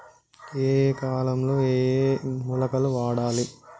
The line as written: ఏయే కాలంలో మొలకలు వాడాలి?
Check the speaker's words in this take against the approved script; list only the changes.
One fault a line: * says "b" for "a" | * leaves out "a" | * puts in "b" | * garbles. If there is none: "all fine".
* puts in "ఏయే"